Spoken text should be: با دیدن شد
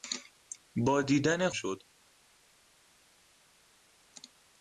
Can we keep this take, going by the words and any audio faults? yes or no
yes